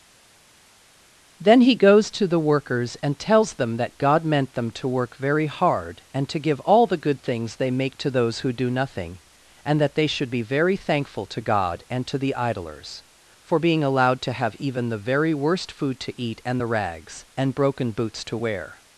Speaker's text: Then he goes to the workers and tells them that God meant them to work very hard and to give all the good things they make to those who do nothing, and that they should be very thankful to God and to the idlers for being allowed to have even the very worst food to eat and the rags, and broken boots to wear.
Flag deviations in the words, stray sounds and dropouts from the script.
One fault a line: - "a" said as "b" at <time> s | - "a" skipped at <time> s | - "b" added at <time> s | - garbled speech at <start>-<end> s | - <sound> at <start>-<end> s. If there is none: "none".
none